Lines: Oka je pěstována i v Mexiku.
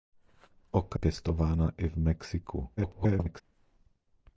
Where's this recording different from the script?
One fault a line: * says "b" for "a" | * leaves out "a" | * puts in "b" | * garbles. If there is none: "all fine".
* leaves out "je"
* garbles